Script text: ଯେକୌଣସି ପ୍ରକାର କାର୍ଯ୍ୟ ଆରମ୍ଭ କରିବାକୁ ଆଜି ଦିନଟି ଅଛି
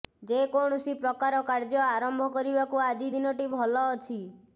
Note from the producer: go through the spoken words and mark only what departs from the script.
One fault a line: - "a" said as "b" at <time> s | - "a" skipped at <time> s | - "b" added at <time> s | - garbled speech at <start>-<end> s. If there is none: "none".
- "ଭଲ" added at 3.6 s